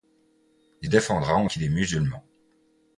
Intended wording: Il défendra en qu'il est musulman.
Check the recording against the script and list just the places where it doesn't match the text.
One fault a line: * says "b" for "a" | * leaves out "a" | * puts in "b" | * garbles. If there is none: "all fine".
all fine